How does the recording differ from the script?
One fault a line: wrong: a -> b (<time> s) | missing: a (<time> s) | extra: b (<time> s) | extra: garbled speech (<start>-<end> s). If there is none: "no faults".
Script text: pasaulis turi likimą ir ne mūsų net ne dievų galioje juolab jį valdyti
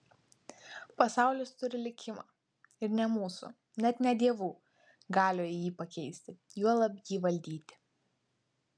extra: jį pakeisti (5.6 s)